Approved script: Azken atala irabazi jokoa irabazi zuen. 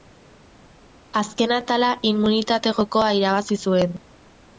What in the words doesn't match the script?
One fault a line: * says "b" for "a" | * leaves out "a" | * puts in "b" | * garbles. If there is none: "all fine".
* says "immunitate" for "irabazi"